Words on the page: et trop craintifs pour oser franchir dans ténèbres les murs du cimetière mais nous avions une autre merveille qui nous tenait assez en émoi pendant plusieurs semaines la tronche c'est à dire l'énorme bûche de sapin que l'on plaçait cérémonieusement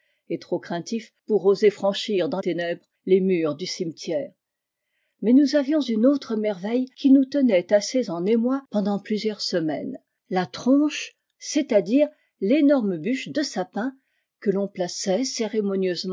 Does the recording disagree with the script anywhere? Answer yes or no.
no